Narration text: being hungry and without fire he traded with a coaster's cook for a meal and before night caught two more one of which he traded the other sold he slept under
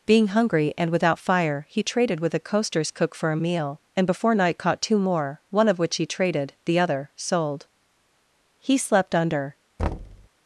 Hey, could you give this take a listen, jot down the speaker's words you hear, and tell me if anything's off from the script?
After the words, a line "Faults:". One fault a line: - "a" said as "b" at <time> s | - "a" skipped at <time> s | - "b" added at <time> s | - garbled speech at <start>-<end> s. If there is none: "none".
being hungry and without fire he traded with a coaster's cook for a meal and before night caught two more one of which he traded the other sold he slept under
Faults:
none